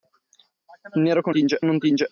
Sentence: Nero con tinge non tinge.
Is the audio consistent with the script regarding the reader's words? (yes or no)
yes